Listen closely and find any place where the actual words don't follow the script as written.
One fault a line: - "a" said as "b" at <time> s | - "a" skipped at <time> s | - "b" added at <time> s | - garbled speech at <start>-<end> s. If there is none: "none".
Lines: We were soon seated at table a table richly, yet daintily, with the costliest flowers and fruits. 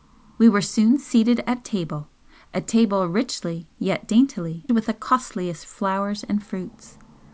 none